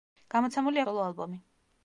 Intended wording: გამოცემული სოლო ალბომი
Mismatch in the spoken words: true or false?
false